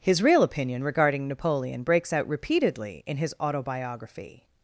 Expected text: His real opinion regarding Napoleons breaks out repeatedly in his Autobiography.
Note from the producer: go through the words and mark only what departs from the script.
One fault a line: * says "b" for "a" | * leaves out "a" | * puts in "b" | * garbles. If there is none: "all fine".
* says "Napoleon" for "Napoleons"